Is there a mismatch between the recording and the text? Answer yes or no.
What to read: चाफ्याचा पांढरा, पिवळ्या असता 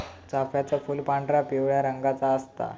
yes